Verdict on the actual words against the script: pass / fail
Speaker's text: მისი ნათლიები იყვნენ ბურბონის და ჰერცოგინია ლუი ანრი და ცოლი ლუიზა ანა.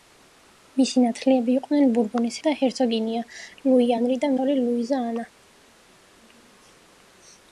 pass